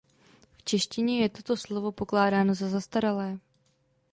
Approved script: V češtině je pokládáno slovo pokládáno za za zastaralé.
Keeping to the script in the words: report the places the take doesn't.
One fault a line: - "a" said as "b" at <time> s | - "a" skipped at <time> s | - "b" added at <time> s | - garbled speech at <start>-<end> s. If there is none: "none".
- "pokládáno" said as "toto" at 1.3 s
- "za" skipped at 2.7 s